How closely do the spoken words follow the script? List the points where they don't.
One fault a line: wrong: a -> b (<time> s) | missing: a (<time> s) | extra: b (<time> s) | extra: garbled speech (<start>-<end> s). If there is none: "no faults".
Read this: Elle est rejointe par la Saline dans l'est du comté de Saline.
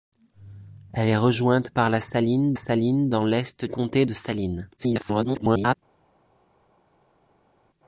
extra: Saline (2.6 s)
missing: du (3.7 s)
extra: garbled speech (4.8-5.7 s)